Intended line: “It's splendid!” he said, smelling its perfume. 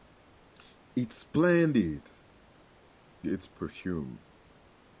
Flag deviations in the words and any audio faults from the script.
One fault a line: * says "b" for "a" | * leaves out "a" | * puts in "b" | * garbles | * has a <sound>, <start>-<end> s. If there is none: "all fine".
* leaves out "he said smelling"